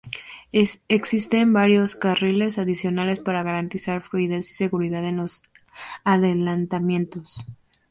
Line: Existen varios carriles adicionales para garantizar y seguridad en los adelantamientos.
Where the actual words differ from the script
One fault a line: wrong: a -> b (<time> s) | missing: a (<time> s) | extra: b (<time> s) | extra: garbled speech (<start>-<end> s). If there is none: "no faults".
extra: fluidez (4.0 s)